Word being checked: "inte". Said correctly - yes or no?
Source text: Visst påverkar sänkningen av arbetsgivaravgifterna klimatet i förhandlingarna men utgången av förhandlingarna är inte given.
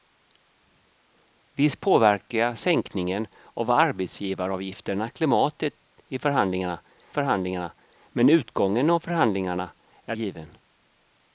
no